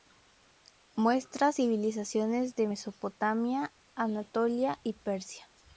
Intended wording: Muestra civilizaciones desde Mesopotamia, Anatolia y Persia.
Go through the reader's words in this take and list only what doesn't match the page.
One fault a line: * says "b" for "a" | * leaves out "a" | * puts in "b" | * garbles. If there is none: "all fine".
* says "de" for "desde"